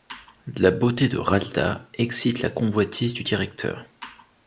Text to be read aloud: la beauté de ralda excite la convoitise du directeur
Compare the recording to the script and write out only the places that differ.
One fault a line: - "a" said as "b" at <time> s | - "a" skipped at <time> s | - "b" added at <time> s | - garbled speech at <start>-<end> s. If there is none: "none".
none